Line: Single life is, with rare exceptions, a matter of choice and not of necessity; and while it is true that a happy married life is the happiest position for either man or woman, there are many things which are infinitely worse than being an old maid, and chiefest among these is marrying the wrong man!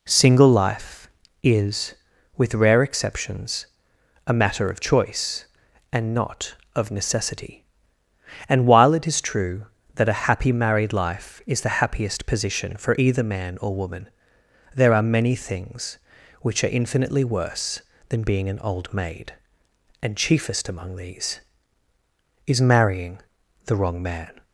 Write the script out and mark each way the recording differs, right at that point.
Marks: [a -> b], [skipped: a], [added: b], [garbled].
Single life is, with rare exceptions, a matter of choice and not of necessity; and while it is true that a happy married life is the happiest position for either man or woman, there are many things which are infinitely worse than being an old maid, and chiefest among these is marrying the wrong man!